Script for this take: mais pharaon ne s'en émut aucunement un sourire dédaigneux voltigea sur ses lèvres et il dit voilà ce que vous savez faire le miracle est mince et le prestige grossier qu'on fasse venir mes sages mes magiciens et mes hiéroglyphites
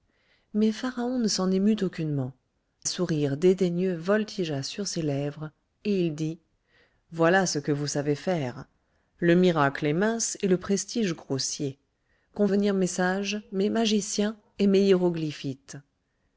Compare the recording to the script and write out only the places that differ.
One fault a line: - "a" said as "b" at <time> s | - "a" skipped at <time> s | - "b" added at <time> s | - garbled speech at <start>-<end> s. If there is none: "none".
- "un" skipped at 2.3 s
- "fasse" skipped at 12.5 s